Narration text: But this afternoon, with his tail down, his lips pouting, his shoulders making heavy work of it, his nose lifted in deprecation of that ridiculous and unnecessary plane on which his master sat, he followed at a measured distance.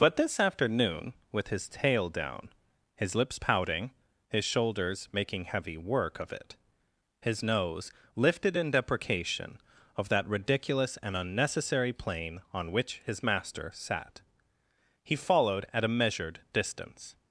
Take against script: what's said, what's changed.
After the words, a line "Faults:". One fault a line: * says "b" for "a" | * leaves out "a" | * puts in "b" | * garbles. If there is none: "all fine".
But this afternoon, with his tail down, his lips pouting, his shoulders making heavy work of it, his nose lifted in deprecation of that ridiculous and unnecessary plane on which his master sat, he followed at a measured distance.
Faults:
all fine